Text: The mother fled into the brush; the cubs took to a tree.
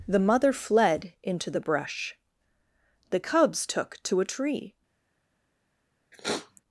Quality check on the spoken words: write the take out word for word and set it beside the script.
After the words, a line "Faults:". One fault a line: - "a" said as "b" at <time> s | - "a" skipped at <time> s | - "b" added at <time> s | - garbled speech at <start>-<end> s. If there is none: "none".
The mother fled into the brush; the cubs took to a tree.
Faults:
none